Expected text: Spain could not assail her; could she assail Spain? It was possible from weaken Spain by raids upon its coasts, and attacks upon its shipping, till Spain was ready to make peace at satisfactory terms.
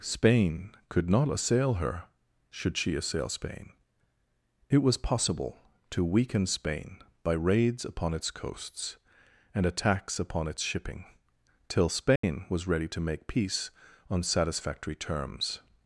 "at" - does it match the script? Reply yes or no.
no